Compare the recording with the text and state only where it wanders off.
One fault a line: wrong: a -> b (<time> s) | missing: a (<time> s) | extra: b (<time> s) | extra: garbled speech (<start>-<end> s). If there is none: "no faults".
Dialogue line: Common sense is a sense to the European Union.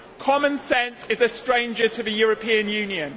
wrong: sense -> stranger (1.3 s)